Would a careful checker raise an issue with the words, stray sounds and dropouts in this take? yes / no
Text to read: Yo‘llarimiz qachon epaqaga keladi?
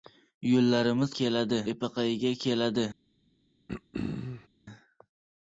yes